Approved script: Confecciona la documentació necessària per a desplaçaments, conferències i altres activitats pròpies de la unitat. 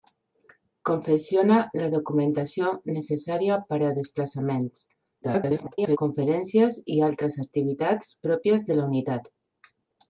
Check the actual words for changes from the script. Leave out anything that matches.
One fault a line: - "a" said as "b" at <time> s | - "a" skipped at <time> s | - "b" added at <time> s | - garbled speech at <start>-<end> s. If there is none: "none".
- garbled speech at 5.2-6.0 s